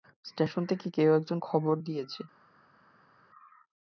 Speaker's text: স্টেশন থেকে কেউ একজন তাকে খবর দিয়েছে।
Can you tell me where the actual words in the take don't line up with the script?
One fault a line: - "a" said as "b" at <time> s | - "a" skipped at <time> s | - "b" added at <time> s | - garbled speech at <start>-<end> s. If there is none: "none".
- "তাকে" skipped at 1.4 s